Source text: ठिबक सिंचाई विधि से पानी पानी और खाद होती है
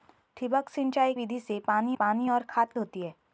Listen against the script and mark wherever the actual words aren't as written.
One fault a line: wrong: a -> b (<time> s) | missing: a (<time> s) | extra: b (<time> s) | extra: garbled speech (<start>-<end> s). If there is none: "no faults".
no faults